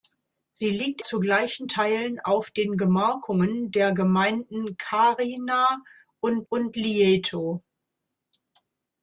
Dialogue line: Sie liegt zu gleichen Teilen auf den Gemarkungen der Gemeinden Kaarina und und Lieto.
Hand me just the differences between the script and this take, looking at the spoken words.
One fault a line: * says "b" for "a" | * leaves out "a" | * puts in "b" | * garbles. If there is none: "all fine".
all fine